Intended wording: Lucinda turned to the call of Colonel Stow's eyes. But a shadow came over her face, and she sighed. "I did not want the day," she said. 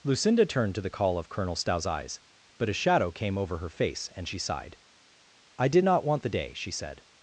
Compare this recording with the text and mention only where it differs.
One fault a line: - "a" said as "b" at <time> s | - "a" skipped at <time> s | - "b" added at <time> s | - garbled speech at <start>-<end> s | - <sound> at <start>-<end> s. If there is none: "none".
none